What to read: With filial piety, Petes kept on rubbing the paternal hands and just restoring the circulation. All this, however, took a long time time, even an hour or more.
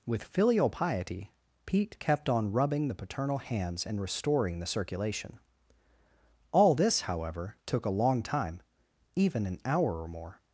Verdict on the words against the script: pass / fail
fail